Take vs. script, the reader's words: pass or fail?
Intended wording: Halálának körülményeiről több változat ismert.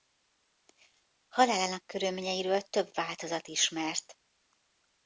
pass